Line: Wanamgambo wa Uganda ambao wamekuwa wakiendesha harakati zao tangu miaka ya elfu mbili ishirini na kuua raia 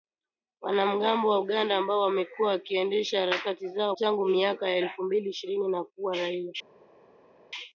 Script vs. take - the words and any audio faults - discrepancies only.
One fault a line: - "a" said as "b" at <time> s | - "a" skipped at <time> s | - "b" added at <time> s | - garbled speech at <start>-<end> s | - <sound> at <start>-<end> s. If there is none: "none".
none